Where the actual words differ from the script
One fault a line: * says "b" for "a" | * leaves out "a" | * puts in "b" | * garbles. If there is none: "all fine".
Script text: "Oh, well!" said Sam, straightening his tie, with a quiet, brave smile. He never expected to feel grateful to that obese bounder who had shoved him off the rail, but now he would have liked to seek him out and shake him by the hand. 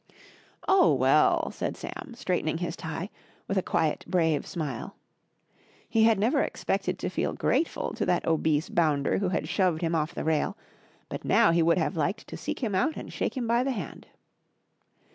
* puts in "had"